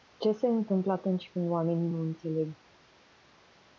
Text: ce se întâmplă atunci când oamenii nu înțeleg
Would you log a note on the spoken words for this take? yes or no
no